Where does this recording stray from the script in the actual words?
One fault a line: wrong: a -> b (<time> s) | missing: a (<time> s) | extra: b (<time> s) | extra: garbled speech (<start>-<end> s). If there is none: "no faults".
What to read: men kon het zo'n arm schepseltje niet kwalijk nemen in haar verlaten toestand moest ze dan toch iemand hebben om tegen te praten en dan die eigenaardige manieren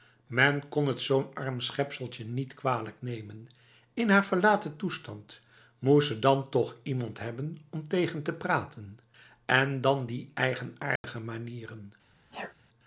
no faults